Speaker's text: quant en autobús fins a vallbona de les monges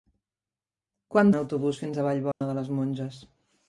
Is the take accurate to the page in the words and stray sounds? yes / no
no